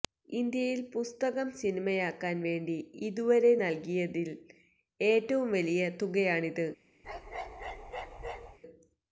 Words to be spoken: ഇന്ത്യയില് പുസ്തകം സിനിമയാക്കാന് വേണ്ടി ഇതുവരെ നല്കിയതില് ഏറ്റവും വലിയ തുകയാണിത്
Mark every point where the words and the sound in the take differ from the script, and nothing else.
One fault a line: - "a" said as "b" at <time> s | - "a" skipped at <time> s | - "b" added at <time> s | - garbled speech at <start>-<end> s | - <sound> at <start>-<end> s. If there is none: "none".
- bark at 7.0-8.6 s